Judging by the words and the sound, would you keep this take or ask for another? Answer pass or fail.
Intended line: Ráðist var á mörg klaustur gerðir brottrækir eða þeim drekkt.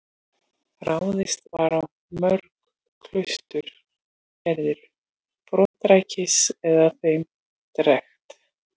fail